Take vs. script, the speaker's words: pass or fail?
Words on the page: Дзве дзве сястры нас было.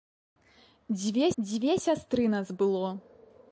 pass